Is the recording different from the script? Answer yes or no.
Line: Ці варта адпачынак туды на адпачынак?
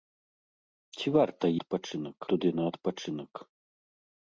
no